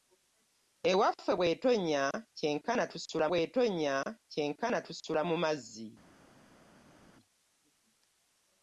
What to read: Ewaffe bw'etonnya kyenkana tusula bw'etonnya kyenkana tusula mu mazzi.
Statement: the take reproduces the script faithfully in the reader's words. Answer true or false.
true